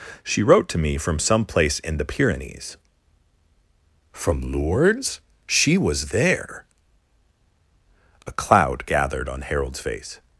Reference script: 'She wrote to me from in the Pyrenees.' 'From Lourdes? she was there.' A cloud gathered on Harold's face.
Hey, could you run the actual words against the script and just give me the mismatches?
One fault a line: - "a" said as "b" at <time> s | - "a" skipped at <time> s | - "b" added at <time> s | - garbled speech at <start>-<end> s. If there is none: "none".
- "some place" added at 1.2 s